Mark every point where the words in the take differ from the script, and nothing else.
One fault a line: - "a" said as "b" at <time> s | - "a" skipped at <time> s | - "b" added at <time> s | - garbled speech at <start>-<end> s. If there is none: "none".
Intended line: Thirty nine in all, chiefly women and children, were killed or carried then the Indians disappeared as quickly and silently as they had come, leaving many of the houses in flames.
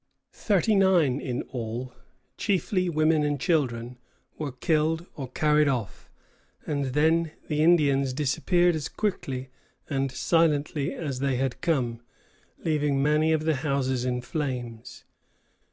- "off and" added at 5.7 s